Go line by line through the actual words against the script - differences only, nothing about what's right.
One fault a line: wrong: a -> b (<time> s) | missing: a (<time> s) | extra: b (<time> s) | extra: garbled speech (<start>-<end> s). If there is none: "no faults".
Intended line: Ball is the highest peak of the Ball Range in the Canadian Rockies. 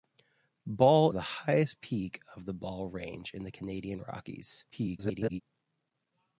missing: is (1.1 s)
extra: garbled speech (4.7-5.4 s)